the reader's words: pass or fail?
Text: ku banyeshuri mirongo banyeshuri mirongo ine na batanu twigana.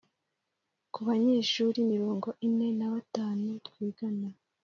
fail